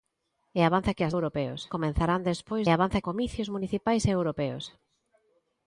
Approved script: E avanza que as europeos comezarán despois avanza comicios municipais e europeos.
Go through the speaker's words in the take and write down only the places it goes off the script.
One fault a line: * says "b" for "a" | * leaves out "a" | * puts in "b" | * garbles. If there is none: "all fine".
all fine